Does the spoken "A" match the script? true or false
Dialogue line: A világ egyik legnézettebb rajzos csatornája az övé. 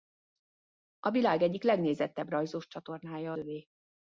true